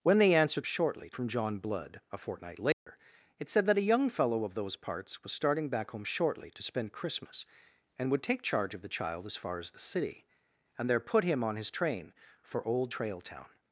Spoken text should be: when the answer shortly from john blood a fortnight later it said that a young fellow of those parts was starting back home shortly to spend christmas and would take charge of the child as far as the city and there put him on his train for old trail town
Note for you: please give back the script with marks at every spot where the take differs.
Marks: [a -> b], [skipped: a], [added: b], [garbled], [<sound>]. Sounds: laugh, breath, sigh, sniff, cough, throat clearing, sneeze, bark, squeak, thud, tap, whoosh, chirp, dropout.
when the answer shortly from john blood a fortnight later [dropout] it said that a young fellow of those parts was starting back home shortly to spend christmas and would take charge of the child as far as the city and there put him on his train for old trail town